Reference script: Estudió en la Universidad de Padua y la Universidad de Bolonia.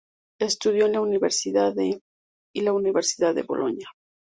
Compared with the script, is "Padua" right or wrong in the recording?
wrong